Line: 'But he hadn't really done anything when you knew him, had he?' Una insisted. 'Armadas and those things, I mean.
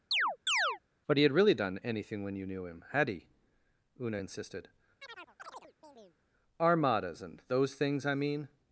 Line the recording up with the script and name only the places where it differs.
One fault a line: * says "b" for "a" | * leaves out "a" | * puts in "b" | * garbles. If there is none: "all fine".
* says "had" for "hadn't"